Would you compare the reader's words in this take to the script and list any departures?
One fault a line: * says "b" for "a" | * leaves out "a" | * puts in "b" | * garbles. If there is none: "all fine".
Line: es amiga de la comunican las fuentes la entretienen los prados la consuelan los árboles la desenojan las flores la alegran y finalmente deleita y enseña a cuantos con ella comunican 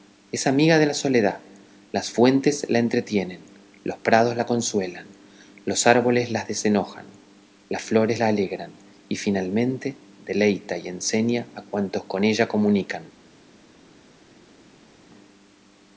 * says "soledad" for "comunican"